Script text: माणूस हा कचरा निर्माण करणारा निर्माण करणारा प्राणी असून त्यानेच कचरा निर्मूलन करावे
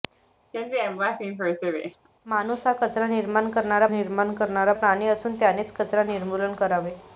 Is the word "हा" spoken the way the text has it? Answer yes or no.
yes